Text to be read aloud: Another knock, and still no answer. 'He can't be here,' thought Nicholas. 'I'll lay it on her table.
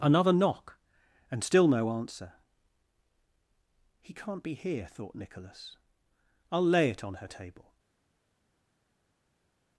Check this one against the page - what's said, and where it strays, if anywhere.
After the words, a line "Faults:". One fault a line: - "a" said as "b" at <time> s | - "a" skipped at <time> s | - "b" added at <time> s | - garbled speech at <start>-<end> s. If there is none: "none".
Another knock, and still no answer. 'He can't be here,' thought Nicholas. 'I'll lay it on her table.
Faults:
none